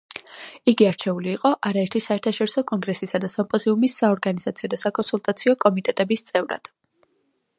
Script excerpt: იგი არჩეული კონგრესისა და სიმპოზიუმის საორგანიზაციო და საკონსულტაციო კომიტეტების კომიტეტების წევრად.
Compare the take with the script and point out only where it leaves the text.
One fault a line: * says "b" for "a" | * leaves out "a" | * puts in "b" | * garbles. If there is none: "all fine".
* puts in "იყო არაერთი საერთაშორისო"
* leaves out "კომიტეტების"